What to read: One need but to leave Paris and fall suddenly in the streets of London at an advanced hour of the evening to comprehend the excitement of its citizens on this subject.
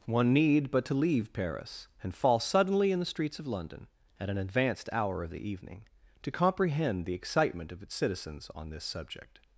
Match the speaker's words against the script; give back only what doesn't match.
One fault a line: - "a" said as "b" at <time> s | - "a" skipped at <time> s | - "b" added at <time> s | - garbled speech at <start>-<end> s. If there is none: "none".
none